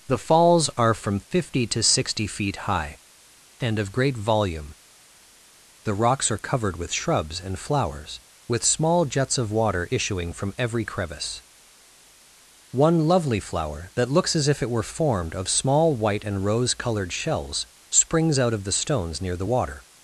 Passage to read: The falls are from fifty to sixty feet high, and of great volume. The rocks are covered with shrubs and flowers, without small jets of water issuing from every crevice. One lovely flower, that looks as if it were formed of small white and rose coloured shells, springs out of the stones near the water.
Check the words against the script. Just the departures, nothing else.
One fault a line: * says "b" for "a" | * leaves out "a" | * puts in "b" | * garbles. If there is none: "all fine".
* says "with" for "without"